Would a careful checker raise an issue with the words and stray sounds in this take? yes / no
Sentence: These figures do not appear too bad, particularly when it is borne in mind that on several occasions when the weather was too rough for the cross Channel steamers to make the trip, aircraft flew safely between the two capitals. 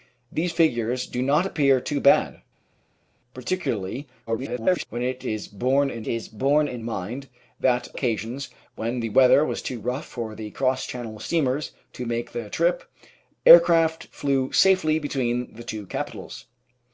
yes